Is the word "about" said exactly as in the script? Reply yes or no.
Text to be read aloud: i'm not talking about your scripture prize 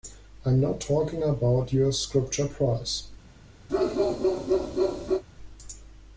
yes